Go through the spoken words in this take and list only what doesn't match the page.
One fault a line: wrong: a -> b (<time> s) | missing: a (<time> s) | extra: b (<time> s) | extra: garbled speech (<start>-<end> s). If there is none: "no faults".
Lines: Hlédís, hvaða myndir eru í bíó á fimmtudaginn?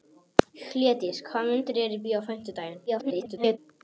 extra: garbled speech (2.9-3.6 s)